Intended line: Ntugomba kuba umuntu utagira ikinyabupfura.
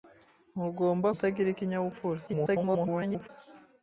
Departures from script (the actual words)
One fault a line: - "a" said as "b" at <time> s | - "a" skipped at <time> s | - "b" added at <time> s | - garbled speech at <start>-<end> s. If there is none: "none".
- "kuba umuntu" skipped at 1.1 s
- garbled speech at 2.3-3.3 s